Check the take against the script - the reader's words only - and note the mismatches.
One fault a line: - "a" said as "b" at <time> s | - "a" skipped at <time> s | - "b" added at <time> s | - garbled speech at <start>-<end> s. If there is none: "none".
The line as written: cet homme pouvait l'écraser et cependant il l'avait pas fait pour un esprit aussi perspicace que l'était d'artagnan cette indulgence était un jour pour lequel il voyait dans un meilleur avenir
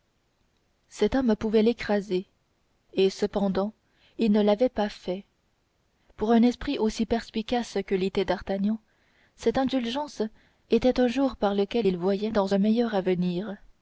- "ne" added at 4.3 s
- "pour" said as "par" at 11.3 s